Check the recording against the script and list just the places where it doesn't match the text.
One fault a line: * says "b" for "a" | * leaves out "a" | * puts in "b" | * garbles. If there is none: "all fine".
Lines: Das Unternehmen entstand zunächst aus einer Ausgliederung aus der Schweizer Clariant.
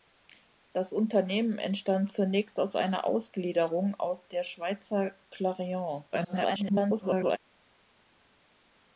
* garbles